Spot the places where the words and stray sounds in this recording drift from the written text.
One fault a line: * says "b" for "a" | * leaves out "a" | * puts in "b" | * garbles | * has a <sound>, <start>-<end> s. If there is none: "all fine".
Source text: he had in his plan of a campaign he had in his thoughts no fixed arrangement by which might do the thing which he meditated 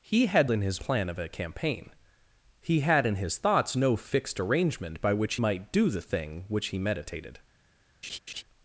* has a laugh, 8.0-8.4 s